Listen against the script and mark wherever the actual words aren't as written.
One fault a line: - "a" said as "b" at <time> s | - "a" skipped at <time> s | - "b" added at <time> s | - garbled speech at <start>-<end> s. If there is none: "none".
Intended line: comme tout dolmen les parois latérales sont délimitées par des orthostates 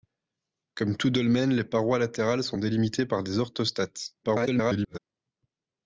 - garbled speech at 4.2-5.0 s